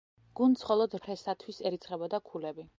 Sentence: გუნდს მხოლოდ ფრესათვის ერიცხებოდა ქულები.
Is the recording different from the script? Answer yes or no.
no